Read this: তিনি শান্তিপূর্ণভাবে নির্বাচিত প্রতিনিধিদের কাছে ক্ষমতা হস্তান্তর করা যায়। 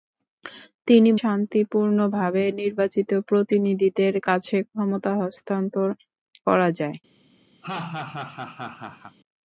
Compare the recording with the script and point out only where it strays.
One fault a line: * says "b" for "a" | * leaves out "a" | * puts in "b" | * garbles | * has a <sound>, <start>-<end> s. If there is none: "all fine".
* has a laugh, 7.6-9.2 s